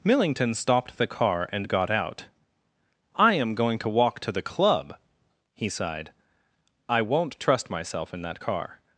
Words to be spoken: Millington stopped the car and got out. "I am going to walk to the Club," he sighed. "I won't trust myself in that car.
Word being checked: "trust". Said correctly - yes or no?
yes